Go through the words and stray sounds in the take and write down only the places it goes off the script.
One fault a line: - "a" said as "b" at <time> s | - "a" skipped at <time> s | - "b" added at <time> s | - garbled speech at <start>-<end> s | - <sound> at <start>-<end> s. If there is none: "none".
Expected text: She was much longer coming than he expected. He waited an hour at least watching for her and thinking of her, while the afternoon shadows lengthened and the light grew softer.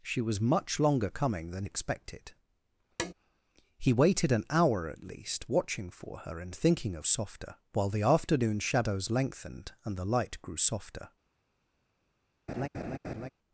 - "he" skipped at 1.7 s
- tap at 3.0-3.1 s
- "her" said as "softer" at 7.0 s
- laugh at 12.5-13.3 s